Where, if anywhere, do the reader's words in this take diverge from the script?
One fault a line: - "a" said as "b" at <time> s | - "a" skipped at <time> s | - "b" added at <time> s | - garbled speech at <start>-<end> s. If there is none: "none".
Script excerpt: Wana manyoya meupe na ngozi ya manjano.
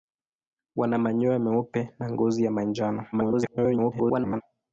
- garbled speech at 3.1-4.4 s